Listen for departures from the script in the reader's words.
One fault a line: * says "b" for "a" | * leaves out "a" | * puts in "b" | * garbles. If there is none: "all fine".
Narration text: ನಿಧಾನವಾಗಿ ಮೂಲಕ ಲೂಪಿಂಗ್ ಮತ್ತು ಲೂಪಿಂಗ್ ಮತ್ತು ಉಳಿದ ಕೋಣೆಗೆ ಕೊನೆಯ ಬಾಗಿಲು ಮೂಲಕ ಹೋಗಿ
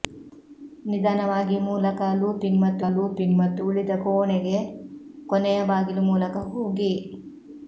all fine